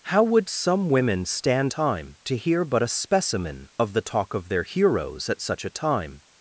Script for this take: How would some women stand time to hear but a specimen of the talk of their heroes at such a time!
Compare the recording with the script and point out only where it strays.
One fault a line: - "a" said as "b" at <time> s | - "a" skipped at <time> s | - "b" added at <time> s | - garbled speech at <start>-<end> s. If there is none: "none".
none